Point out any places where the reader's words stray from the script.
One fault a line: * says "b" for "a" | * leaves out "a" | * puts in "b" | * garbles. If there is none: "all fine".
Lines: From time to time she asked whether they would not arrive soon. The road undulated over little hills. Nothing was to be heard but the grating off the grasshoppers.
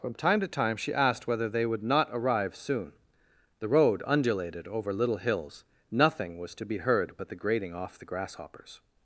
all fine